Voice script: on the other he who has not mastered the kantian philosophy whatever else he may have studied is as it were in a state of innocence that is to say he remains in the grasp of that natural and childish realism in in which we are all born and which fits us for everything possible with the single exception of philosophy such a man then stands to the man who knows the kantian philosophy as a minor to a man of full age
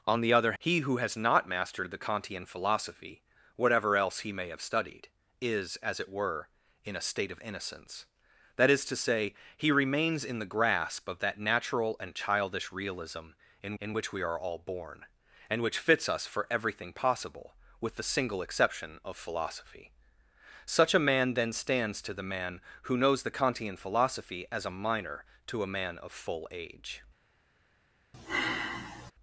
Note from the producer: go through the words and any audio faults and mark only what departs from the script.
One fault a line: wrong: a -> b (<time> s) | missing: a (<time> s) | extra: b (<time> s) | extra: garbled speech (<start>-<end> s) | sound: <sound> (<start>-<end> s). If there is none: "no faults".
sound: sigh (28.1-29.1 s)